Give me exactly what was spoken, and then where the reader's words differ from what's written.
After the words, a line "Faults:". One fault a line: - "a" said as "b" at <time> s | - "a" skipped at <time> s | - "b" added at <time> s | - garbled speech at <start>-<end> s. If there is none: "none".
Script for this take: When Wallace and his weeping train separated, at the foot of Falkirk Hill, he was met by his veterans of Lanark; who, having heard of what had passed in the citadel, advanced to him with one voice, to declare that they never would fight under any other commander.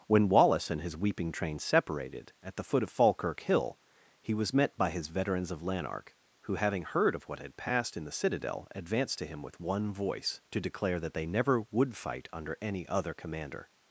When Wallace and his weeping train separated, at the foot of Falkirk Hill, he was met by his veterans of Lanark; who, having heard of what had passed in the citadel, advanced to him with one voice, to declare that they never would fight under any other commander.
Faults:
none